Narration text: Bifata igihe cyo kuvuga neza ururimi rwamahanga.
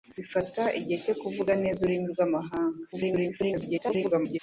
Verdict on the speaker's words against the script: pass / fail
fail